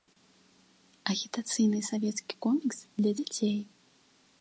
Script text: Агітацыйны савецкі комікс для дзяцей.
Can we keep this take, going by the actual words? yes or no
yes